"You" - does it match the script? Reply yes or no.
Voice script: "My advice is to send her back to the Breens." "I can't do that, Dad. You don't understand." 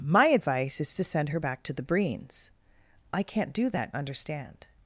no